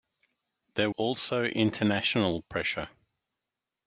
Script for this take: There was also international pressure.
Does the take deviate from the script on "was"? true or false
true